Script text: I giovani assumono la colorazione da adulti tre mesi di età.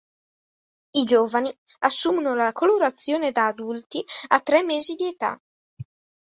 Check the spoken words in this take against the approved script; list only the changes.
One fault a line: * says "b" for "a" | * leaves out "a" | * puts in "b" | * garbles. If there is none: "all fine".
* puts in "a"